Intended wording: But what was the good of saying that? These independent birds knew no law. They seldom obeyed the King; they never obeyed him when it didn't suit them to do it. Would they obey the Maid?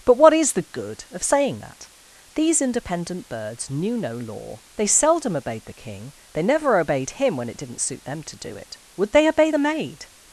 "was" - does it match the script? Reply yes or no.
no